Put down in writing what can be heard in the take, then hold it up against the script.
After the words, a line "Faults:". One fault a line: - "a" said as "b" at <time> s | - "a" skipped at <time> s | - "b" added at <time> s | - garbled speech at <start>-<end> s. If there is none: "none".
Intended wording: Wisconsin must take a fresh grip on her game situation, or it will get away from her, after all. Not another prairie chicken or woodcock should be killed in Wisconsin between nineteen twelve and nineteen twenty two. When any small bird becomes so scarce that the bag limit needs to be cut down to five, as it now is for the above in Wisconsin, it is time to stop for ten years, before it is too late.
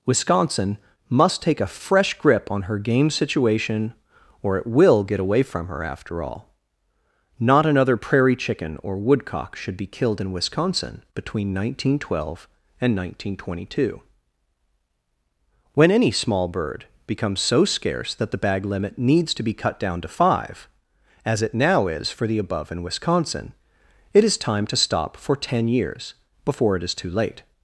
Wisconsin must take a fresh grip on her game situation, or it will get away from her, after all. Not another prairie chicken or woodcock should be killed in Wisconsin between nineteen twelve and nineteen twenty two. When any small bird becomes so scarce that the bag limit needs to be cut down to five, as it now is for the above in Wisconsin, it is time to stop for ten years, before it is too late.
Faults:
none